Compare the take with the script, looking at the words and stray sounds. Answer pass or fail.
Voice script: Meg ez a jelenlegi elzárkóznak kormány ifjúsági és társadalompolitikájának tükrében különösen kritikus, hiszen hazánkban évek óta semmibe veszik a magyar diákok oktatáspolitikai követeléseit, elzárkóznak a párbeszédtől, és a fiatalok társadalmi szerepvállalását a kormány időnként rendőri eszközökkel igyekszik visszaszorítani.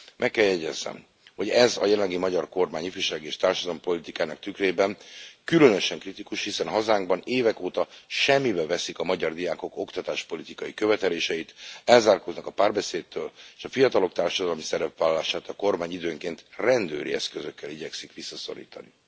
fail